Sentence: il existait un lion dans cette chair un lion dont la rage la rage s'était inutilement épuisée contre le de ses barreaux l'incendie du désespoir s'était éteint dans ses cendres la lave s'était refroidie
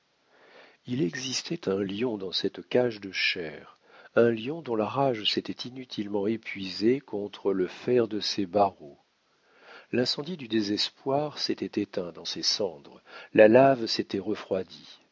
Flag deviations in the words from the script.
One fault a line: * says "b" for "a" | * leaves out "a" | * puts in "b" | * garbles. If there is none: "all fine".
* puts in "cage de"
* leaves out "la rage"
* puts in "fer"